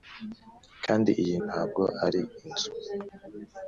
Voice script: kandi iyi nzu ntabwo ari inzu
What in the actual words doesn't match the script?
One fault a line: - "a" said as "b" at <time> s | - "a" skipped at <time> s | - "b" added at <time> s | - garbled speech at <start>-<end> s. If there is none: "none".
- "nzu" skipped at 1.4 s